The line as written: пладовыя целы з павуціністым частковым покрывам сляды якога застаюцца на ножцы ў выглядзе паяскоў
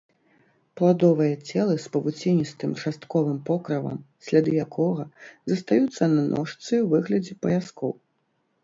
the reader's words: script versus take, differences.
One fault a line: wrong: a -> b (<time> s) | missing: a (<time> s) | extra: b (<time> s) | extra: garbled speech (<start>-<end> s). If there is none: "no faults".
no faults